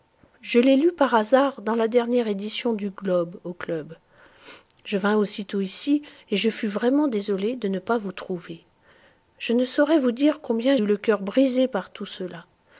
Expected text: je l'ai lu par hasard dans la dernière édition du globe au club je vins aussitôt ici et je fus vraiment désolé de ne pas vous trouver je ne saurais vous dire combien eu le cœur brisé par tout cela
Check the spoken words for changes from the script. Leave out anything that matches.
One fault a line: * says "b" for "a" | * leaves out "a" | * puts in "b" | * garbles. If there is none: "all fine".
all fine